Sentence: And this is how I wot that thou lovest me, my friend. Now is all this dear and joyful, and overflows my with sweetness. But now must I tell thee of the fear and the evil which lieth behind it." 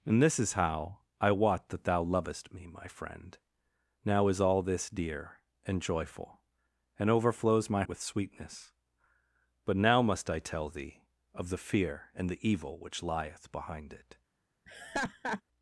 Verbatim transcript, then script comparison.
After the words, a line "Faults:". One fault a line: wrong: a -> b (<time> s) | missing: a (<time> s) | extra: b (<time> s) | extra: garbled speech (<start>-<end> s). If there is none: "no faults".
And this is how I wot that thou lovest me, my friend. Now is all this dear and joyful, and overflows my with sweetness. But now must I tell thee of the fear and the evil which lieth behind it."
Faults:
no faults